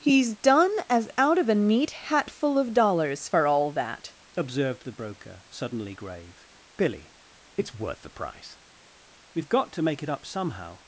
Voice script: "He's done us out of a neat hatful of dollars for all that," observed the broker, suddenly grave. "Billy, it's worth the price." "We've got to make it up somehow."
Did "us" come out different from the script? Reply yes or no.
yes